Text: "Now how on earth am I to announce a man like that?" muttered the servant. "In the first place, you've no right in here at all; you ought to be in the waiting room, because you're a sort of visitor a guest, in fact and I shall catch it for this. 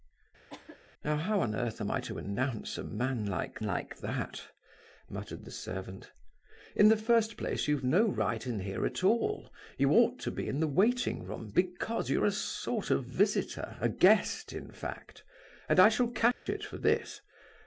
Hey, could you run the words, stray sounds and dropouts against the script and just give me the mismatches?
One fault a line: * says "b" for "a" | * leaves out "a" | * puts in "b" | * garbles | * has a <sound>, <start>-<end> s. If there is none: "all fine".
* has a cough, 0.5-0.8 s
* puts in "like"
* has a dropout, 16.3-16.5 s